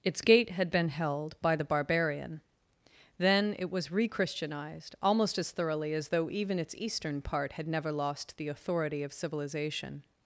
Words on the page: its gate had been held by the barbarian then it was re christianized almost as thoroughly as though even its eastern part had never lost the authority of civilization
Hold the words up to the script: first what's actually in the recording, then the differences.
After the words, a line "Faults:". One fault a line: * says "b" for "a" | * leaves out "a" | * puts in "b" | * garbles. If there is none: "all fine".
its gate had been held by the barbarian then it was re christianized almost as thoroughly as though even its eastern part had never lost the authority of civilization
Faults:
all fine